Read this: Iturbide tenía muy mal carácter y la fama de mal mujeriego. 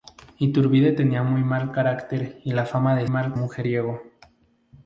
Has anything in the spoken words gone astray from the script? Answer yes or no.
no